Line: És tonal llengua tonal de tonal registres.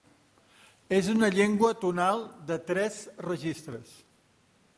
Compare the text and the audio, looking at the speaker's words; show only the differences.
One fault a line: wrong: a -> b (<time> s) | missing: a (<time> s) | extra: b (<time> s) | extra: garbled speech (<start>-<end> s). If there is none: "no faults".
wrong: tonal -> una (1.1 s)
wrong: tonal -> tres (2.7 s)